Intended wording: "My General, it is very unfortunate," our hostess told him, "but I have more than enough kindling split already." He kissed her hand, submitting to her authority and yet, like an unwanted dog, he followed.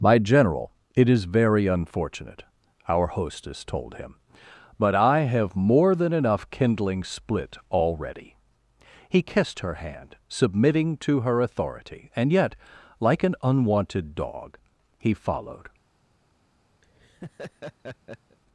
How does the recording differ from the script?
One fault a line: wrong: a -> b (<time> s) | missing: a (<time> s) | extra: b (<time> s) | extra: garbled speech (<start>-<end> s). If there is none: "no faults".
no faults